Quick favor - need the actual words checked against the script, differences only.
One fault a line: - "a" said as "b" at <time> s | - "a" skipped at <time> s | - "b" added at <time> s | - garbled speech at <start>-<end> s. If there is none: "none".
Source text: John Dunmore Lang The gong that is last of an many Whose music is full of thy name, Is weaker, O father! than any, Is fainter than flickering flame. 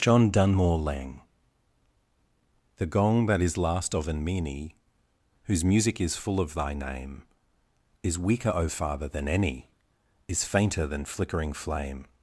none